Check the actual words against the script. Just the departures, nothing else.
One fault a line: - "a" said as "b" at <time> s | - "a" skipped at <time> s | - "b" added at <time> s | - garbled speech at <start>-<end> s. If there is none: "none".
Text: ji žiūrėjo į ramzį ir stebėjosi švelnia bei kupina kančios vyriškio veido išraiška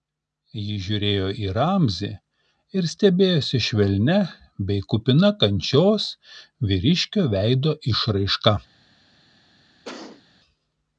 none